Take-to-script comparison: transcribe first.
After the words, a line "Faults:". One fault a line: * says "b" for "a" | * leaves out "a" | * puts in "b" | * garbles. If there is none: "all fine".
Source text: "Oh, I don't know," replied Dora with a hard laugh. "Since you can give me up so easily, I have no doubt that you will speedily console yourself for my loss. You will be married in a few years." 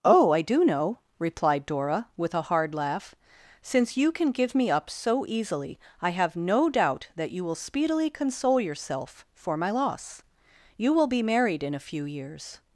"Oh, I do know," replied Dora with a hard laugh. "Since you can give me up so easily, I have no doubt that you will speedily console yourself for my loss. You will be married in a few years."
Faults:
* says "do" for "don't"